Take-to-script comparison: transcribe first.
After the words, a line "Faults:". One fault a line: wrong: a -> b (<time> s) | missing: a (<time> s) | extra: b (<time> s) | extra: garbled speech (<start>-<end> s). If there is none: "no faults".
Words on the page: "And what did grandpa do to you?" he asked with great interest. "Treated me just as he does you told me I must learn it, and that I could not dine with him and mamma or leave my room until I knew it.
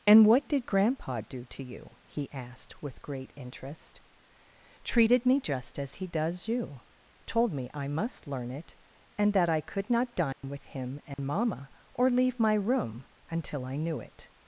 "And what did grandpa do to you?" he asked with great interest. "Treated me just as he does you told me I must learn it, and that I could not dine with him and mamma or leave my room until I knew it.
Faults:
no faults